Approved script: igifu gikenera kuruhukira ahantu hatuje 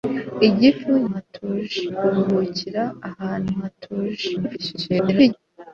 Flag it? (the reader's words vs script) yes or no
yes